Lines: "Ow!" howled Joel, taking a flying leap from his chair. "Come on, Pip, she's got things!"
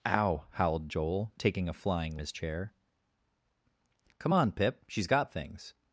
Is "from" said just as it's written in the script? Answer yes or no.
no